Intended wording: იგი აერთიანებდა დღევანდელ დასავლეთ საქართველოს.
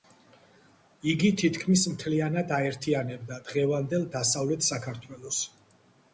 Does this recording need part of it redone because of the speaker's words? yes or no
yes